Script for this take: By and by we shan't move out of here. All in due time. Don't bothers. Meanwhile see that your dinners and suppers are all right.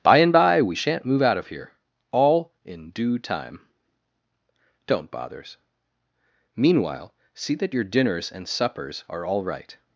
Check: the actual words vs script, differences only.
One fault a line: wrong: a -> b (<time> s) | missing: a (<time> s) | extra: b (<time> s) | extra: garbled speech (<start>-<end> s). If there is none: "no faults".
no faults